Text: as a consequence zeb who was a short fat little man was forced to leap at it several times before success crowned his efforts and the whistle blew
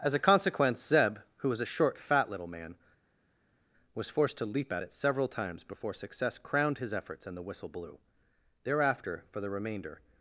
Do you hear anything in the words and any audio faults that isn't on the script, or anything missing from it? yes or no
yes